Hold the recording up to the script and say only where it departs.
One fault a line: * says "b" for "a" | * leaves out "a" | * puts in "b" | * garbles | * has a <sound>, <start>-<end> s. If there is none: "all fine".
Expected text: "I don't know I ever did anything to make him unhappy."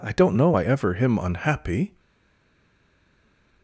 * leaves out "did anything to make"